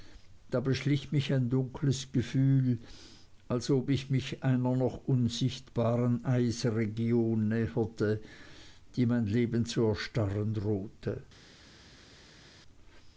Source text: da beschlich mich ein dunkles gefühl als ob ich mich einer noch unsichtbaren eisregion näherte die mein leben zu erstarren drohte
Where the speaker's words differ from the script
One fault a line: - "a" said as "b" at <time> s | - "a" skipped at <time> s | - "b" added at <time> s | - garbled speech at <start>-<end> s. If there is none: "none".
none